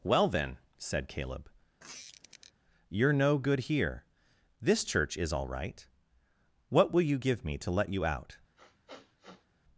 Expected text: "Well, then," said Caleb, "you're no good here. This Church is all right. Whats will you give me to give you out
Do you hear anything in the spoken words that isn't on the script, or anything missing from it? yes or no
yes